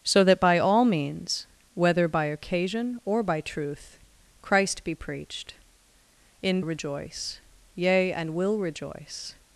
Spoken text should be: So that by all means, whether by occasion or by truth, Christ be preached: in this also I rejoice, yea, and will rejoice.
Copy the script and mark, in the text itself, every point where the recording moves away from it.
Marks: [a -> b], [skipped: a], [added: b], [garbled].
So that by all means, whether by occasion or by truth, Christ be preached: in [skipped: this also I] rejoice, yea, and will rejoice.